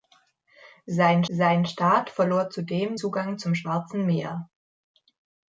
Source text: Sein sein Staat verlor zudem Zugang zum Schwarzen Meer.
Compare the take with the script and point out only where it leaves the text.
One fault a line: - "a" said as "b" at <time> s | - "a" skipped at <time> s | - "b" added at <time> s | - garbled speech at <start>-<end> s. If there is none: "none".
none